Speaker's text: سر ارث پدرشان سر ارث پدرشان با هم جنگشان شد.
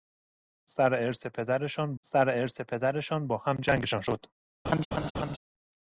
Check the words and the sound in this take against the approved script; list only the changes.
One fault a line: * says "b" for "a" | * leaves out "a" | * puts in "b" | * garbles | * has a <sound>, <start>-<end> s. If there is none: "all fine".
* has a laugh, 4.6-5.4 s